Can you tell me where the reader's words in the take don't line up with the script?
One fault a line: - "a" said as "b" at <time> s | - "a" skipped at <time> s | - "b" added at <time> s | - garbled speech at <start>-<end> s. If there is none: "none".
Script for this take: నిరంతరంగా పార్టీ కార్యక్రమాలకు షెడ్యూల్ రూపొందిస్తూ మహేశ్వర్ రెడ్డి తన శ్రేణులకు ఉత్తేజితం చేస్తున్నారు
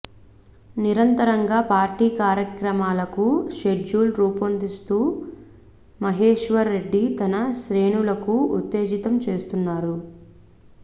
none